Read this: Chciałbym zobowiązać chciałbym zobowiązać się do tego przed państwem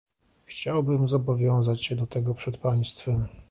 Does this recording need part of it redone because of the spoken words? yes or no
yes